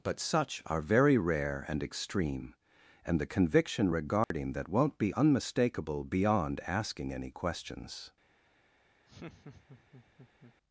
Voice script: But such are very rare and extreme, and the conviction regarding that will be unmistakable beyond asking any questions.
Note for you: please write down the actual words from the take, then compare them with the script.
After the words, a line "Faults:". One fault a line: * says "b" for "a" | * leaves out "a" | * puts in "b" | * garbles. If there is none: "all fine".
But such are very rare and extreme, and the conviction regarding that won't be unmistakable beyond asking any questions.
Faults:
* says "won't" for "will"